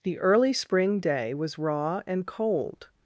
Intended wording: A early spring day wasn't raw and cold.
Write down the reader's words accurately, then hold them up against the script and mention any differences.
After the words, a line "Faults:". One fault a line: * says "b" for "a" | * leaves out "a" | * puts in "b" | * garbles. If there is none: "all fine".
The early spring day was raw and cold.
Faults:
* says "The" for "A"
* says "was" for "wasn't"